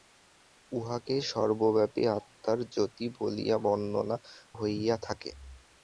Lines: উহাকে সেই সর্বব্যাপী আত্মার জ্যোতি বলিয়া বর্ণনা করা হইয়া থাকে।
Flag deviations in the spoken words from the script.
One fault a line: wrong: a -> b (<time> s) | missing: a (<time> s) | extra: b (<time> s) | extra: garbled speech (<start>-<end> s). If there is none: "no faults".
missing: সেই (1.1 s)
missing: করা (4.2 s)